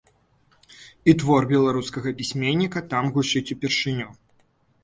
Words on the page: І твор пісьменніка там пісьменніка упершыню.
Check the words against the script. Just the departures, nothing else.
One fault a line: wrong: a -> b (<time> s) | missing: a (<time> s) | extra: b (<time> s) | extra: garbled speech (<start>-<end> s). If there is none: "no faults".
extra: беларускага (1.5 s)
wrong: пісьменніка -> гучыць (3.2 s)